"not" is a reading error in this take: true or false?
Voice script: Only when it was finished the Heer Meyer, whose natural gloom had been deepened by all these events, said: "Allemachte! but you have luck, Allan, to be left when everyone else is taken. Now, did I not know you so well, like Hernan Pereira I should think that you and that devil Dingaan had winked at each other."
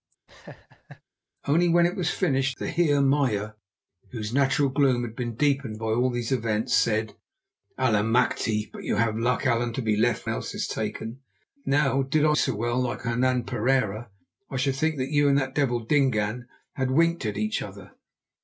true